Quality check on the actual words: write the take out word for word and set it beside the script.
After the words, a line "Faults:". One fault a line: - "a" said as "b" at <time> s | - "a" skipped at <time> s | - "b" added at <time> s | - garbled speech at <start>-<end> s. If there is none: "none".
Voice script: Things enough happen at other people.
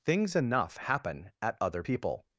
Things enough happen at other people.
Faults:
none